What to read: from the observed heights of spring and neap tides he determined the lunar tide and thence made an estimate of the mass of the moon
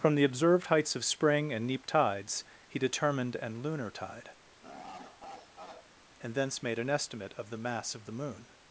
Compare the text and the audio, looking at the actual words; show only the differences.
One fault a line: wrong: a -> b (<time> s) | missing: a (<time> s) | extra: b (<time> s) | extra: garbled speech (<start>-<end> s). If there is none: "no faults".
wrong: the -> an (3.4 s)